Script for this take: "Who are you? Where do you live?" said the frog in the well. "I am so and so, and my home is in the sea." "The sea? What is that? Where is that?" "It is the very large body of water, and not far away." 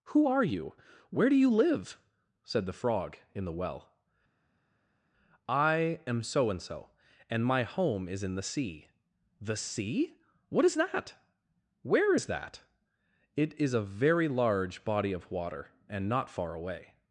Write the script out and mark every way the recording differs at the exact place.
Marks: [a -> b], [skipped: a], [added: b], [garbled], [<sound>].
"Who are you? Where do you live?" said the frog in the well. "I am so and so, and my home is in the sea." "The sea? What is that? Where is that?" "It is [the -> a] very large body of water, and not far away."